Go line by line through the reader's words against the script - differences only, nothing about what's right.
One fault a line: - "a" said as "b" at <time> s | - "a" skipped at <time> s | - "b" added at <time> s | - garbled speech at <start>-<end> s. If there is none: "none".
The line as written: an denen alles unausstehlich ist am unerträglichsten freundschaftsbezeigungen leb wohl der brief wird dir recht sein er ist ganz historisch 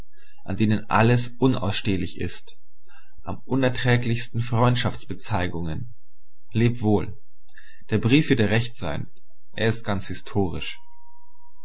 none